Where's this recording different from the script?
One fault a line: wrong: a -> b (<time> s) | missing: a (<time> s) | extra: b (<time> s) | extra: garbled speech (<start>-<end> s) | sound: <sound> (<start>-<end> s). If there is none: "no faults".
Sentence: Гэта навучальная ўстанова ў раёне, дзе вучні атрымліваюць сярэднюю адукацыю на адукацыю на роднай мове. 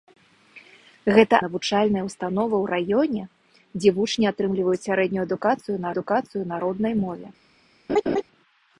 sound: laugh (7.9-8.2 s)